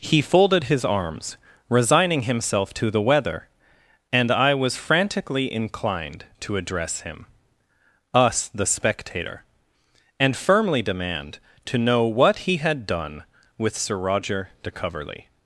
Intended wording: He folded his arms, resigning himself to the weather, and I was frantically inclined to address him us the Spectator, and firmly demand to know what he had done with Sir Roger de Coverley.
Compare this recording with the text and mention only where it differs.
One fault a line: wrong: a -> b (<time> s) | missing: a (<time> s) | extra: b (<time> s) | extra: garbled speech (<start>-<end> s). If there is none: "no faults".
no faults